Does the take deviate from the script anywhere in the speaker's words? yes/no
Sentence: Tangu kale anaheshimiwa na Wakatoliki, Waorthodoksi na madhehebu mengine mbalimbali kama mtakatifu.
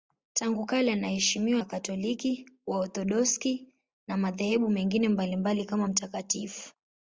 yes